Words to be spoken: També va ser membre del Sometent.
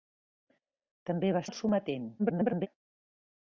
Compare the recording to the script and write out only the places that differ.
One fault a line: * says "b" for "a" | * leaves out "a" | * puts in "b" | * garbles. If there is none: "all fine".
* leaves out "ser membre"
* garbles